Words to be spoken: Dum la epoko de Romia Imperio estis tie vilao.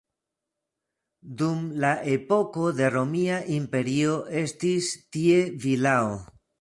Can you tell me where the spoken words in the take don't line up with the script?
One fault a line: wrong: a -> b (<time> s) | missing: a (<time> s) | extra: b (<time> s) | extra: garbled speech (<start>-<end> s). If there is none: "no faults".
no faults